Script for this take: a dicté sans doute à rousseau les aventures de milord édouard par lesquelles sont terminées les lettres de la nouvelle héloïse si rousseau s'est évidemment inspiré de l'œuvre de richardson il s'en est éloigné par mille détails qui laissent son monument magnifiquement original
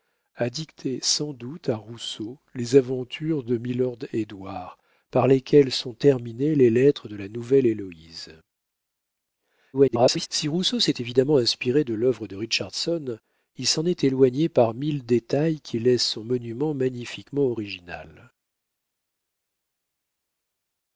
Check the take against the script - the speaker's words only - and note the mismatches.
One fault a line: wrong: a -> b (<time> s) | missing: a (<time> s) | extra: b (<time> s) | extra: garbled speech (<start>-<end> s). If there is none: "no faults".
extra: garbled speech (9.7-10.3 s)